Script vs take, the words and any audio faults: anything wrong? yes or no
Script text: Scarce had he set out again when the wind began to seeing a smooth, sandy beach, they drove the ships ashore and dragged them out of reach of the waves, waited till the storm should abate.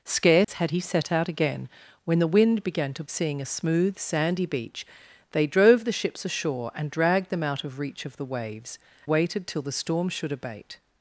yes